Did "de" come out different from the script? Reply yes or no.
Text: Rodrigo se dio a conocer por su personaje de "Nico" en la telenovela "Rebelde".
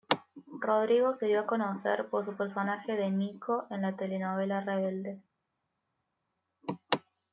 no